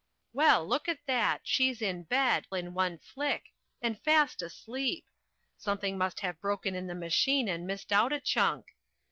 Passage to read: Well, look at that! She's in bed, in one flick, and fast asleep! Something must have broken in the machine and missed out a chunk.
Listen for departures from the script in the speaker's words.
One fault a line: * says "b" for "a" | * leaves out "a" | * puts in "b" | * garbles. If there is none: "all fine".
all fine